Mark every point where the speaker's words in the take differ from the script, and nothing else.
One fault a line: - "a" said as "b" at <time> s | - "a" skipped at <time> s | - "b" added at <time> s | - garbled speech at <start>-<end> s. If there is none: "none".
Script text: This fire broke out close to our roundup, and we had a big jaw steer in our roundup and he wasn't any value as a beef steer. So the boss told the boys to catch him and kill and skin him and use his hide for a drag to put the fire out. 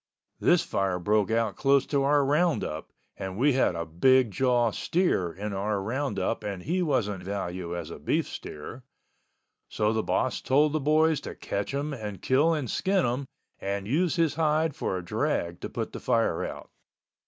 - "any" skipped at 7.2 s